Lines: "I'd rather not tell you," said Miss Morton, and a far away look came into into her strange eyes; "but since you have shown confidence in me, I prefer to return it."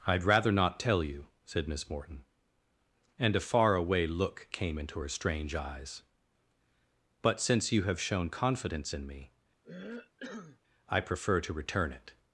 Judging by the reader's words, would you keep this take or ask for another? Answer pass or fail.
fail